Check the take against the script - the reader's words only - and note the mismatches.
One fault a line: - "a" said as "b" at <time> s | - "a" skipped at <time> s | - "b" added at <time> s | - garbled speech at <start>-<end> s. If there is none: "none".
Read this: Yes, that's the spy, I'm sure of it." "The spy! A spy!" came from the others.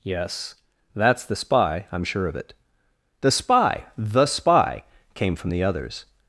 - "A" said as "The" at 4.0 s